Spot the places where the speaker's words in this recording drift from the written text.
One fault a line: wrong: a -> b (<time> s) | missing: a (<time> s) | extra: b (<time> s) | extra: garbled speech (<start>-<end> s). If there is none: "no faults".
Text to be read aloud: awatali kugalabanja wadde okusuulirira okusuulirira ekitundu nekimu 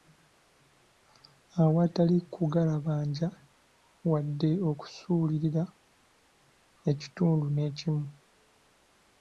missing: okusuulirira (5.6 s)